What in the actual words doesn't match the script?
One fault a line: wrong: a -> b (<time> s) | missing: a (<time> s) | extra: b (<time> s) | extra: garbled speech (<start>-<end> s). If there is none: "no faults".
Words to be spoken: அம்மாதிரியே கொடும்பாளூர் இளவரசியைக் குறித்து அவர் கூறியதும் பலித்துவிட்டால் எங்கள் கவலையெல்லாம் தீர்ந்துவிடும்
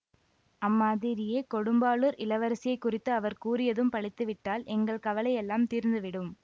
no faults